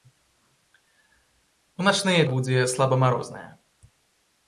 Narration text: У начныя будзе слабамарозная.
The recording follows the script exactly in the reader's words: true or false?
true